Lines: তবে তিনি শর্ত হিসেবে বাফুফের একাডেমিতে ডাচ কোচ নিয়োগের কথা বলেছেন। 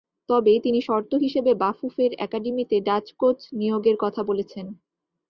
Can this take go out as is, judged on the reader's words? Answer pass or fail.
pass